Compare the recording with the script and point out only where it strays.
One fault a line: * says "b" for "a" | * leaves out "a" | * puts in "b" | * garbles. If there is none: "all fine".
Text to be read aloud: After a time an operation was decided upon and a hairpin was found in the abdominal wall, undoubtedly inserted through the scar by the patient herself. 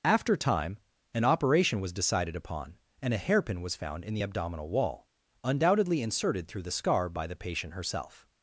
* leaves out "a"